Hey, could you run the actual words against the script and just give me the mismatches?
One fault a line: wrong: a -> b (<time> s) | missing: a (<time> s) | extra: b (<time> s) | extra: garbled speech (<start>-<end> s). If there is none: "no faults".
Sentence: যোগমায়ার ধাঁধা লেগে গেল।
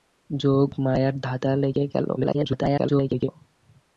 extra: garbled speech (2.2-3.3 s)